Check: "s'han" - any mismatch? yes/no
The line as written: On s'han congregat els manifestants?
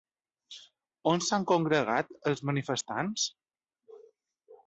no